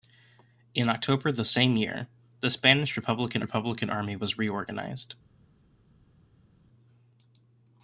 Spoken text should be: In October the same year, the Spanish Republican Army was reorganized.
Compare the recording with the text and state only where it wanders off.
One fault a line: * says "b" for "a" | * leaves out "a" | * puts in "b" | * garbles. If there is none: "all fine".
* puts in "Republican"